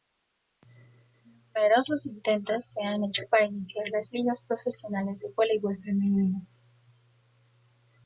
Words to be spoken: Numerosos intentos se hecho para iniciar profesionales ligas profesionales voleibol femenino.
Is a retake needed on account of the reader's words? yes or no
yes